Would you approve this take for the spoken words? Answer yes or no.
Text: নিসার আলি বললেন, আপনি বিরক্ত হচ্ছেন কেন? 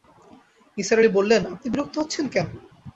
yes